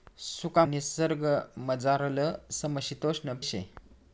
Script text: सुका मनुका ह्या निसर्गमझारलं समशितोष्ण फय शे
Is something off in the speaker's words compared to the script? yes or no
yes